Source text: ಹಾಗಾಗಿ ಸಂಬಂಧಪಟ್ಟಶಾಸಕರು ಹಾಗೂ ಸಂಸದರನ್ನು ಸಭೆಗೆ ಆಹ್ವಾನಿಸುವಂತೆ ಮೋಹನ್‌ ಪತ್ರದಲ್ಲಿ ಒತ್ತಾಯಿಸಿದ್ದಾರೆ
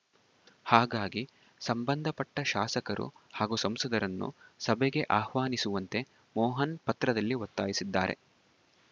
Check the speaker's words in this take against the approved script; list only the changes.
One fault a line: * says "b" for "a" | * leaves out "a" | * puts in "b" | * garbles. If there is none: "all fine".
all fine